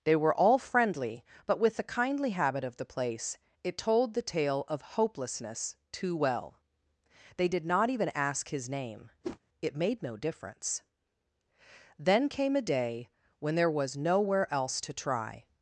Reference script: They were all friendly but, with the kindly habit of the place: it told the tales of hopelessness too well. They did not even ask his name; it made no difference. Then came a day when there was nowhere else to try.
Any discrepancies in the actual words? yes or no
yes